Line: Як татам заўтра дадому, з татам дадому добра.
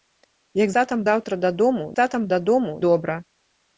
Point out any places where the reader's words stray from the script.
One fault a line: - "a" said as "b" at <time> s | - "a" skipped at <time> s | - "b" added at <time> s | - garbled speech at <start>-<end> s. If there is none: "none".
none